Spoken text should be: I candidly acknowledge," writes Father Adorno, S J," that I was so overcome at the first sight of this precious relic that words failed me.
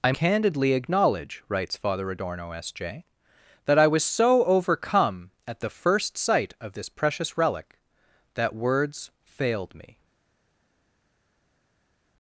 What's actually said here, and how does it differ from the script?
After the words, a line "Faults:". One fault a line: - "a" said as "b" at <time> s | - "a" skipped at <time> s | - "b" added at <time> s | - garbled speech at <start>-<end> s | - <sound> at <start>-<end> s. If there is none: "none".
I candidly acknowledge," writes Father Adorno, S J," that I was so overcome at the first sight of this precious relic that words failed me.
Faults:
none